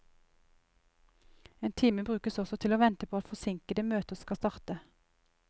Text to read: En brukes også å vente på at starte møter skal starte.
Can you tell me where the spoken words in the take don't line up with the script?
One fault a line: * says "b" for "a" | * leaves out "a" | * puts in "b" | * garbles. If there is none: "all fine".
* puts in "time"
* puts in "til"
* says "forsinkede" for "starte"